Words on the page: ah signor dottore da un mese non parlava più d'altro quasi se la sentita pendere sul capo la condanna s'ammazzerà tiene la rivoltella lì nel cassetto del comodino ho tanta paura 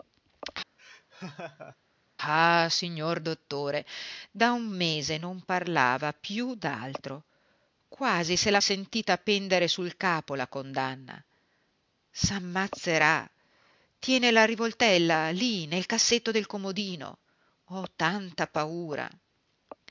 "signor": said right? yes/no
yes